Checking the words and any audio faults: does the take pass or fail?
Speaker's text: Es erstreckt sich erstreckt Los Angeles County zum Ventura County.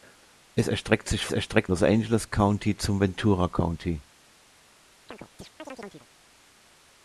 fail